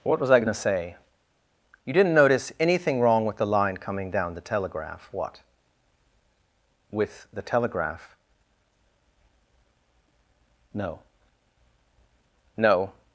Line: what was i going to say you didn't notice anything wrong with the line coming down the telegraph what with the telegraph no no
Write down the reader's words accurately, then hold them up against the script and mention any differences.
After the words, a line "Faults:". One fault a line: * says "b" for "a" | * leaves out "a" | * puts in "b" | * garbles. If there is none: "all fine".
what was i going to say you didn't notice anything wrong with the line coming down the telegraph what with the telegraph no no
Faults:
all fine